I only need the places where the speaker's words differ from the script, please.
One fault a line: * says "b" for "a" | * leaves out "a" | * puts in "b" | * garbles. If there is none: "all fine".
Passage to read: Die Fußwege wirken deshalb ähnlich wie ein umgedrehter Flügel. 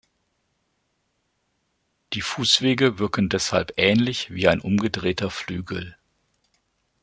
all fine